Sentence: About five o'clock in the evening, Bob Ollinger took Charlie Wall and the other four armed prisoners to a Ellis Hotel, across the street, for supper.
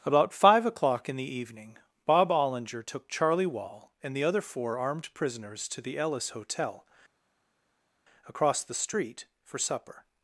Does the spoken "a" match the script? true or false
false